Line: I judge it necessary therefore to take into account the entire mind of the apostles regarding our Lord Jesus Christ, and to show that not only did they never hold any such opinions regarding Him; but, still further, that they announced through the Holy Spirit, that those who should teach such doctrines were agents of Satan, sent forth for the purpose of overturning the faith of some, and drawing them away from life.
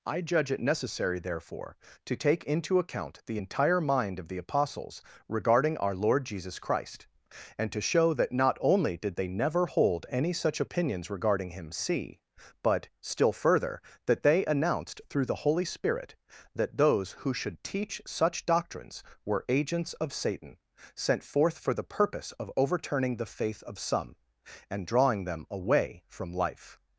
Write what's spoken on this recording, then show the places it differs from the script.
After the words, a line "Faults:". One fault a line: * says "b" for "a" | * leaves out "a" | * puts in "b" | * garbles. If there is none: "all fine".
I judge it necessary therefore to take into account the entire mind of the apostles regarding our Lord Jesus Christ, and to show that not only did they never hold any such opinions regarding Him; see but, still further, that they announced through the Holy Spirit, that those who should teach such doctrines were agents of Satan, sent forth for the purpose of overturning the faith of some, and drawing them away from life.
Faults:
* puts in "see"